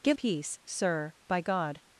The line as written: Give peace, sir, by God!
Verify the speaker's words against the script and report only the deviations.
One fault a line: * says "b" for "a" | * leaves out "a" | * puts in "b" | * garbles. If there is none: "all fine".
all fine